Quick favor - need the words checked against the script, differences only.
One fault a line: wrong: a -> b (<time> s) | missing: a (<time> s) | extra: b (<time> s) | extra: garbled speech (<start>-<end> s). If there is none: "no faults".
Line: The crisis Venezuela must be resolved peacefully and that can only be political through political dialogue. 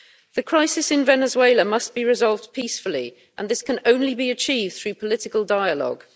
extra: in (0.9 s)
wrong: that -> this (3.5 s)
wrong: political -> achieved (4.3 s)